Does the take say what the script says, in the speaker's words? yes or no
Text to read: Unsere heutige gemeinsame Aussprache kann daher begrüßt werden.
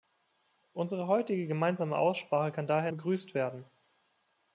yes